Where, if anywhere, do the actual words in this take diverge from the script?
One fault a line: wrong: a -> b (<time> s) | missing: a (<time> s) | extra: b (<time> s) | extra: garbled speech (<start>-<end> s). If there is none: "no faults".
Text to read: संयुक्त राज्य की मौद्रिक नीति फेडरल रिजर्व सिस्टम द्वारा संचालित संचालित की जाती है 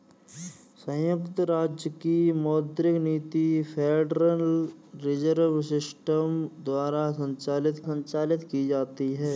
no faults